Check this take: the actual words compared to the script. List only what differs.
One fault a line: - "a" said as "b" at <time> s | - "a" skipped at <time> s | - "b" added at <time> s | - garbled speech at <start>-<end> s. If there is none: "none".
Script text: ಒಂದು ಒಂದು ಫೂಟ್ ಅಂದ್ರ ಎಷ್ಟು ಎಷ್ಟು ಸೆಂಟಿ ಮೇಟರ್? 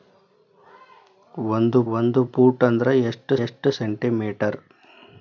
none